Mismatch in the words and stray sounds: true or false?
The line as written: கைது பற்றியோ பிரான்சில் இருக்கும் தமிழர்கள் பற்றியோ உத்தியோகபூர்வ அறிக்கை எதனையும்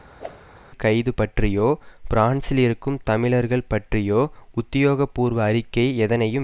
true